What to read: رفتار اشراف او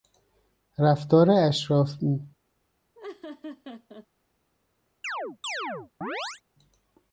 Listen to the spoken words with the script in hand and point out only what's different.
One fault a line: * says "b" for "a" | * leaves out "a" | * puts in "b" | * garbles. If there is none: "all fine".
all fine